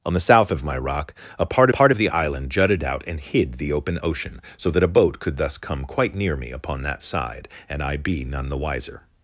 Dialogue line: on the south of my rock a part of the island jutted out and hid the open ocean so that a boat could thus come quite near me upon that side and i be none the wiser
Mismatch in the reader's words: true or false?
true